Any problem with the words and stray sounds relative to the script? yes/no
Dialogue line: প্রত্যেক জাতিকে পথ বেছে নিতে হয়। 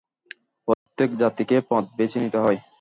yes